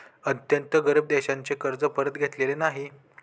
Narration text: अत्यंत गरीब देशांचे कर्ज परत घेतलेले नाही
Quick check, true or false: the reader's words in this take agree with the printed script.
true